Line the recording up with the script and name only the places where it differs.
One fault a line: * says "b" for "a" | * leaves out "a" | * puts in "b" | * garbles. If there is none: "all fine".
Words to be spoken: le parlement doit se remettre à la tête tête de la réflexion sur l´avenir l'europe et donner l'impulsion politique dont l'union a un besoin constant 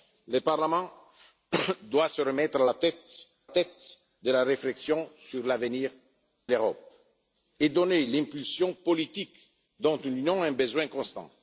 all fine